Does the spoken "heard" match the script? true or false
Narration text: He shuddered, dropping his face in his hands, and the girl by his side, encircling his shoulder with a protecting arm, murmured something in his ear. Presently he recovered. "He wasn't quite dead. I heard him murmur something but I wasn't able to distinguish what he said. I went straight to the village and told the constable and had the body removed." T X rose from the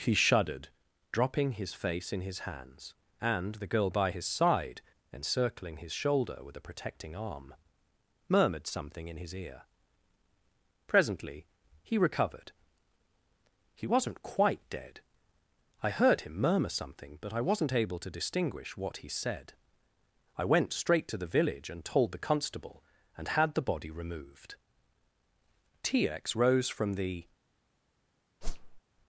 true